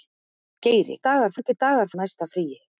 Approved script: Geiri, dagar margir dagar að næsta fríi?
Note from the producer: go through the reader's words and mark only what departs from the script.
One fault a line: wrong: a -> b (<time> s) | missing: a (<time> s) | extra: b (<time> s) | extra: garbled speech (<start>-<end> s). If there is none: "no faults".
no faults